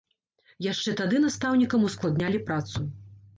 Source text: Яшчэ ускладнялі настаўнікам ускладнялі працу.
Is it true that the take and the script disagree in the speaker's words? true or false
true